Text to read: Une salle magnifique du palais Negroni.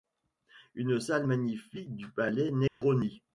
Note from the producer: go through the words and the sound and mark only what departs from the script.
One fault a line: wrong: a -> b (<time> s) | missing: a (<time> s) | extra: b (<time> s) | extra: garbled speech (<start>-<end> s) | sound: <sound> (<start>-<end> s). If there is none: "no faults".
sound: dropout (2.7-2.8 s)